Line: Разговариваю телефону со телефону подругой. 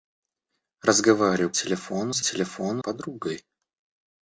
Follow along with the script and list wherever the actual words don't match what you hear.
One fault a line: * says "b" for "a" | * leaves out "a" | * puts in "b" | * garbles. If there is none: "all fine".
all fine